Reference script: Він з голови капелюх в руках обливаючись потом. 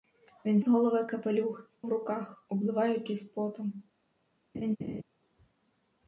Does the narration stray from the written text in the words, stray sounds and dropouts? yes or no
yes